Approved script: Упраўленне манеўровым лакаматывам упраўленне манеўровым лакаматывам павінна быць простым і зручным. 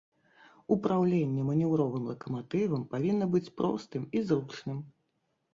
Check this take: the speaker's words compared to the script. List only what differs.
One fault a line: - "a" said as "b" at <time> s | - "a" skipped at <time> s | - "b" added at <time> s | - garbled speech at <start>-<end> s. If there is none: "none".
- "упраўленне манеўровым лакаматывам" skipped at 2.9 s